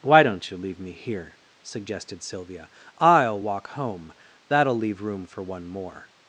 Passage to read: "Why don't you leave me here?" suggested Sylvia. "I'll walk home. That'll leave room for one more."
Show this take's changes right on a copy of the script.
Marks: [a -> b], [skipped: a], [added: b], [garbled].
"Why don't you leave me here?" suggested Sylvia. "I'll walk home. That'll leave room for one more."